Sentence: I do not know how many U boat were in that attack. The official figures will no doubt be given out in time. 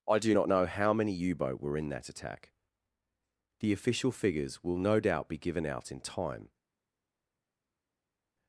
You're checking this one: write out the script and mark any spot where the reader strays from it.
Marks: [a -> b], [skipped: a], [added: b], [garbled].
I do not know how many U boat were in that attack. The official figures will no doubt be given out in time.